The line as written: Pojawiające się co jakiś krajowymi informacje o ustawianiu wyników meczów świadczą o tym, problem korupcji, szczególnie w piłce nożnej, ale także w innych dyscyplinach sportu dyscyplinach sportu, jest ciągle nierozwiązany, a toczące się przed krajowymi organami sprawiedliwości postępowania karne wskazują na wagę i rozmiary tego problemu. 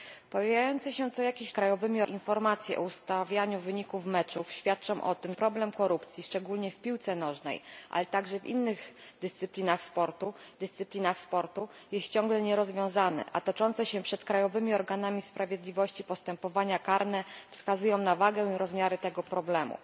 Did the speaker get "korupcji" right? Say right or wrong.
right